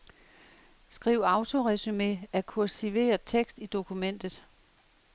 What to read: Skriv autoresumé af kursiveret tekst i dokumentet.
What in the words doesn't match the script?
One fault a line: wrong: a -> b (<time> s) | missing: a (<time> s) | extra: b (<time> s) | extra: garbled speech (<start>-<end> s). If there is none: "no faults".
no faults